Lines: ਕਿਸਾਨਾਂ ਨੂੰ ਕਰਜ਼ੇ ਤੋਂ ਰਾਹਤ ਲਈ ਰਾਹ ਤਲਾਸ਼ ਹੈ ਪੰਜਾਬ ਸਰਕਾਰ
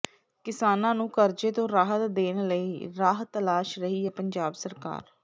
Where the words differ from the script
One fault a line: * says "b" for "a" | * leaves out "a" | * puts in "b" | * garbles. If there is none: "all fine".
* puts in "ਦੇਣ"
* puts in "ਰਹੀ"